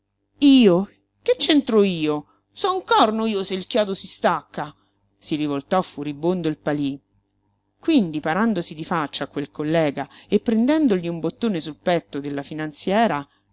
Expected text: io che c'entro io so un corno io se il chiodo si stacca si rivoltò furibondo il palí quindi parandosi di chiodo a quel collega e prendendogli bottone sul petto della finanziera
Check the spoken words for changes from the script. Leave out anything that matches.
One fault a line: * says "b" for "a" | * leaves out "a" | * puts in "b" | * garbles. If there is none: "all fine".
* says "faccia" for "chiodo"
* puts in "un"